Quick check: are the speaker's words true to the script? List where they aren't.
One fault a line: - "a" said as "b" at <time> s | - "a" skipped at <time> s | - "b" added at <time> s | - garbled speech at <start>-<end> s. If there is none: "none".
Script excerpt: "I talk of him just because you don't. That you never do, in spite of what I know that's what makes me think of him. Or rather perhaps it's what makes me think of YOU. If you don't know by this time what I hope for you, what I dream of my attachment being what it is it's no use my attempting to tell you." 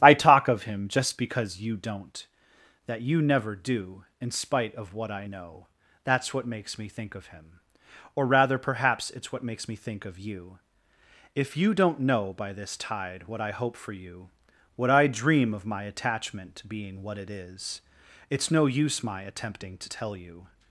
- "time" said as "tide" at 12.8 s